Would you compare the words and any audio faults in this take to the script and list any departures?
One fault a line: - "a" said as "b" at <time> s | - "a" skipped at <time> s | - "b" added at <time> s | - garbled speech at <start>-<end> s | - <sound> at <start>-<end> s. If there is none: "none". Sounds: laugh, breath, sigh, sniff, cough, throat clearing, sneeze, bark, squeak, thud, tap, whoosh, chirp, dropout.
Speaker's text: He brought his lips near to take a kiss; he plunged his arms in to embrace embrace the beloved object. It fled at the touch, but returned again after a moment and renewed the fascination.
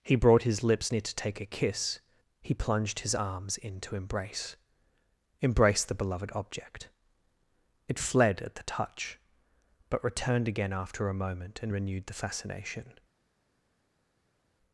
none